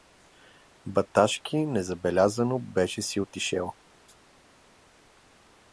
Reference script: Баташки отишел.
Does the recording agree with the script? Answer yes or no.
no